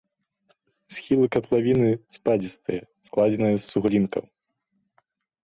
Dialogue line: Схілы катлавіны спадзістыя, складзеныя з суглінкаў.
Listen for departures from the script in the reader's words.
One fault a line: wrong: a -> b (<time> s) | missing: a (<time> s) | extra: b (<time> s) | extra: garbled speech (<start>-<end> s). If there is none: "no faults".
no faults